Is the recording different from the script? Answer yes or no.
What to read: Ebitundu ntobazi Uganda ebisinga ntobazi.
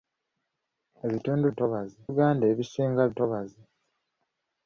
no